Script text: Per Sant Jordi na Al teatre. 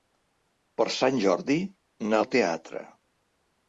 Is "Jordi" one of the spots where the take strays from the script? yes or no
no